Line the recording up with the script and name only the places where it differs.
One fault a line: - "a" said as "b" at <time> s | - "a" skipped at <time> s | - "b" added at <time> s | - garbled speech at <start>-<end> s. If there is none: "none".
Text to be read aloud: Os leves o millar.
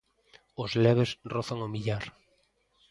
- "rozan" added at 1.3 s